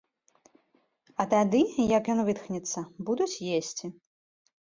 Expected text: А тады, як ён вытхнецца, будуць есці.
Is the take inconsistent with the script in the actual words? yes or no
no